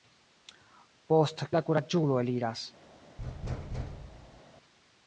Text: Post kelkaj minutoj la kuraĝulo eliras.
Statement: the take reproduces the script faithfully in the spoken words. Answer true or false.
false